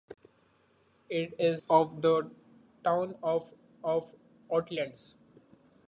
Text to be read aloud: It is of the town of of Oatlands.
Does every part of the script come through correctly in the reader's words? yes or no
yes